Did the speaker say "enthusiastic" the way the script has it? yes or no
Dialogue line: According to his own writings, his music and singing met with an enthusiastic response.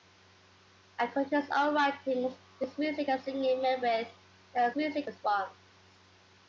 no